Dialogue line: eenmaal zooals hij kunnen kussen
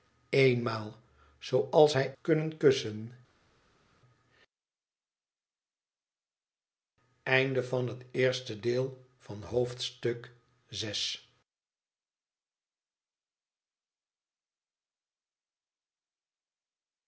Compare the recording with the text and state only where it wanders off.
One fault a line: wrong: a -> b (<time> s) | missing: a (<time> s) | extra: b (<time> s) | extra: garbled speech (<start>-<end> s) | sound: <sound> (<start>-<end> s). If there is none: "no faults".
no faults